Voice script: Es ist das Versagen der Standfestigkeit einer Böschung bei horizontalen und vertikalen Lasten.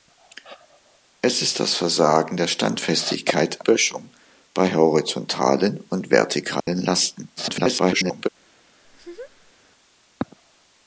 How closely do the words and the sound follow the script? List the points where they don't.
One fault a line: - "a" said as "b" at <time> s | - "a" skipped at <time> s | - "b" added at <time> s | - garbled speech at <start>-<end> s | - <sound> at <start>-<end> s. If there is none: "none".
- "einer" skipped at 3.6 s
- dropout at 6.6-6.7 s
- garbled speech at 7.4-8.3 s
- laugh at 8.8-9.5 s